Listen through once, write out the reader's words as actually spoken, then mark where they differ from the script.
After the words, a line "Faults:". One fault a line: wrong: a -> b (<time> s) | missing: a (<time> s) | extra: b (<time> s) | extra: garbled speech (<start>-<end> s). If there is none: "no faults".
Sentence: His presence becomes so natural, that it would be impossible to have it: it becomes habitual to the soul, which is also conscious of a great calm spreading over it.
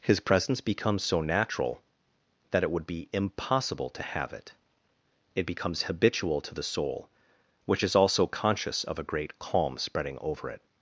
His presence becomes so natural, that it would be impossible to have it: it becomes habitual to the soul, which is also conscious of a great calm spreading over it.
Faults:
no faults